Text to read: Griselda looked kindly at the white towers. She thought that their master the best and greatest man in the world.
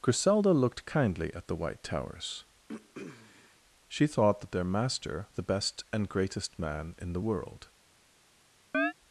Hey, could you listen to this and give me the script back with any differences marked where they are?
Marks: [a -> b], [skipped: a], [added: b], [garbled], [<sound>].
Griselda looked kindly at the white towers. [throat clearing] She thought that their master the best and greatest man in the world. [chirp]